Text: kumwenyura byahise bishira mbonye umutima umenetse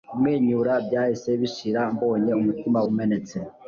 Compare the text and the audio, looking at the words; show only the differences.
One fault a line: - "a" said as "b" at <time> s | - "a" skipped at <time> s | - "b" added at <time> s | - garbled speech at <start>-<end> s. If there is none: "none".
none